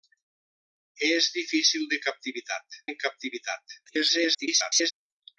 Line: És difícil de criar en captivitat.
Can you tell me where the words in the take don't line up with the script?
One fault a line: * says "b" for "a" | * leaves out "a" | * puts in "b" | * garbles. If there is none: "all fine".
* says "captivitat" for "criar"
* garbles